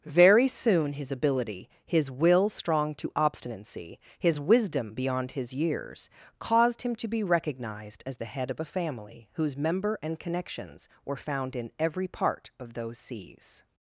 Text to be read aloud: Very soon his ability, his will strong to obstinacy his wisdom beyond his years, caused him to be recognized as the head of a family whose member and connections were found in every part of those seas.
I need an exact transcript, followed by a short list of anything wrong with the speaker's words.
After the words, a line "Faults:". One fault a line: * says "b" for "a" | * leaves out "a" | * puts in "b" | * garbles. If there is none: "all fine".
Very soon his ability, his will strong to obstinacy his wisdom beyond his years, caused him to be recognized as the head of a family whose member and connections were found in every part of those seas.
Faults:
all fine